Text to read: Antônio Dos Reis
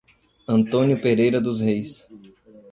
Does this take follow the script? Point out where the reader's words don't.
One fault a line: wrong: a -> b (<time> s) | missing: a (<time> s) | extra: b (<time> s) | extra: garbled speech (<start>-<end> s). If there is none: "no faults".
extra: Pereira (1.0 s)